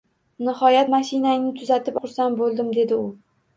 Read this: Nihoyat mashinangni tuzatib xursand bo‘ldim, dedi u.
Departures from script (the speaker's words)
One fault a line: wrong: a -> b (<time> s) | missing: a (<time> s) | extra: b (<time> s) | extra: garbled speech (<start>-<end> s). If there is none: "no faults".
no faults